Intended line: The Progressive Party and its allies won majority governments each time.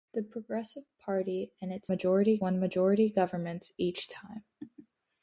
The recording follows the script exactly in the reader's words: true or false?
false